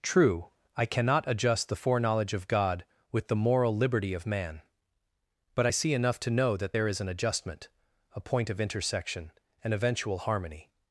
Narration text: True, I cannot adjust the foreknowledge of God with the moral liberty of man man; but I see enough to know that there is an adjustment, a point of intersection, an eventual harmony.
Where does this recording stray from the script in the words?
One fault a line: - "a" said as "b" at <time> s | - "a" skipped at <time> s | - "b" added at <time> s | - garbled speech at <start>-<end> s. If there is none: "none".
- "man" skipped at 4.6 s